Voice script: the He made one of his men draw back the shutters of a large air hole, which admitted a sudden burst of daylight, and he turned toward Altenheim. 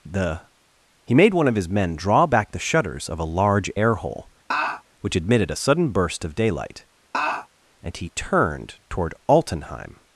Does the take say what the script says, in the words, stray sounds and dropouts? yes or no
no